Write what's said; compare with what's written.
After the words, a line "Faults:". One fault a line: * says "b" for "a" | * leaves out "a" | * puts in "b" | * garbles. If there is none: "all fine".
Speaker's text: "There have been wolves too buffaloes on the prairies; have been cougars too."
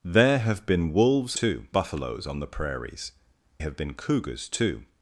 "There have been wolves too buffaloes on the prairies; have been cougars too."
Faults:
all fine